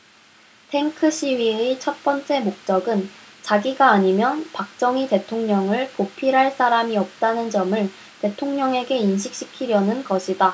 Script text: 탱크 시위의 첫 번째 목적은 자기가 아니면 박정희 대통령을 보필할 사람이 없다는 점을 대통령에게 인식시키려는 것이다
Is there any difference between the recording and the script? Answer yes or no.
no